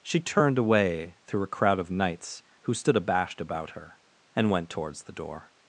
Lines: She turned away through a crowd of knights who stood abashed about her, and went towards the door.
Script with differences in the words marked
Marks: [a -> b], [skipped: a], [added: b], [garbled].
She turned away through a crowd of knights who stood abashed about her, and went towards the door.